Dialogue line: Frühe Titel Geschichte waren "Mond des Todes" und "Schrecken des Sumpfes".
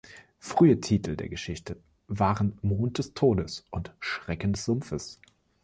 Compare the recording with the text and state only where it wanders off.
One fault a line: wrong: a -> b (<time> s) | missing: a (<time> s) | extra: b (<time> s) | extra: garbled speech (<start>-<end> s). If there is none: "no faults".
extra: der (1.1 s)